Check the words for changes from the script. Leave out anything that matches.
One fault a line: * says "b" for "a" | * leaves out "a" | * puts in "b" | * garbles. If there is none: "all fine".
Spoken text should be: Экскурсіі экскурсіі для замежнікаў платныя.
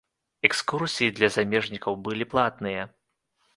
* leaves out "экскурсіі"
* puts in "былі"